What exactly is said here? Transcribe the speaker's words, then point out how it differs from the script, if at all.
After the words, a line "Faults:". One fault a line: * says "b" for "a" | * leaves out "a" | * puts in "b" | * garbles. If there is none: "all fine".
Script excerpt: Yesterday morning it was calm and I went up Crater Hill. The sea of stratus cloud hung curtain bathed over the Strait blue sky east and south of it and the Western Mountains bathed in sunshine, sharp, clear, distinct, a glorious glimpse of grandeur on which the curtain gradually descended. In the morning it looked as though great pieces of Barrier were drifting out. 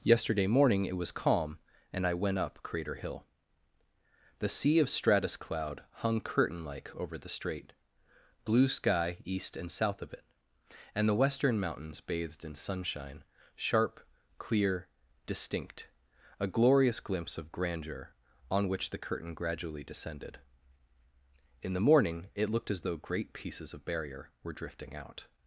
Yesterday morning it was calm and I went up Crater Hill. The sea of stratus cloud hung curtain like over the Strait blue sky east and south of it and the Western Mountains bathed in sunshine, sharp, clear, distinct, a glorious glimpse of grandeur on which the curtain gradually descended. In the morning it looked as though great pieces of Barrier were drifting out.
Faults:
* says "like" for "bathed"